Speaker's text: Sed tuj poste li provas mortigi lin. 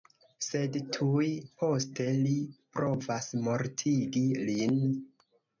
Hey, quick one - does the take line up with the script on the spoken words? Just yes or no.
yes